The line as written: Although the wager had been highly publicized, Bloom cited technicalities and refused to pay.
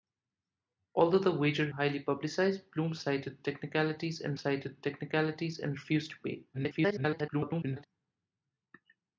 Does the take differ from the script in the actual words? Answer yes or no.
yes